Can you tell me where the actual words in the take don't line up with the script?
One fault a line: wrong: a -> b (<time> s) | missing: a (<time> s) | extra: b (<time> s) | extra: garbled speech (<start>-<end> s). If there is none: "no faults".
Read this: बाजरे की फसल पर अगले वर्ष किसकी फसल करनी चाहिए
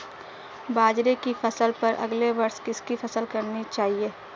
no faults